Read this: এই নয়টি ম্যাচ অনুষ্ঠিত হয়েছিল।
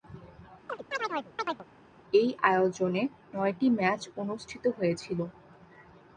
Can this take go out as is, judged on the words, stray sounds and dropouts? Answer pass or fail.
fail